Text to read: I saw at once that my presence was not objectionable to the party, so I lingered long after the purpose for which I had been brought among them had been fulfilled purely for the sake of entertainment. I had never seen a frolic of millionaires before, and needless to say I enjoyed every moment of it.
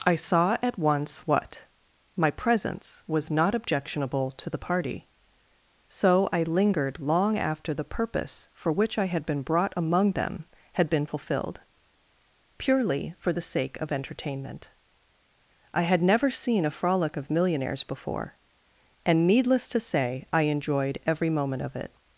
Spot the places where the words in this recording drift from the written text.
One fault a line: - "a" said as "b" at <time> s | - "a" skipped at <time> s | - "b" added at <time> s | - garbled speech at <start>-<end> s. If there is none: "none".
- "that" said as "what" at 1.3 s